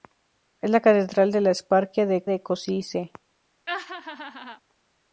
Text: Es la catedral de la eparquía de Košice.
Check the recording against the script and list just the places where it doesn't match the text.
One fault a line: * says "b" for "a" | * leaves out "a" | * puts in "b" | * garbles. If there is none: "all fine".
* puts in "de"